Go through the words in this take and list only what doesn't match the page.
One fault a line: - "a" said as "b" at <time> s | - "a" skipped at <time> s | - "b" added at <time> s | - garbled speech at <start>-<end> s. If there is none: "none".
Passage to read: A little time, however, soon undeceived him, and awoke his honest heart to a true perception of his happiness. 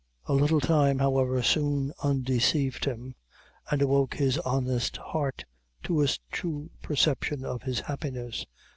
none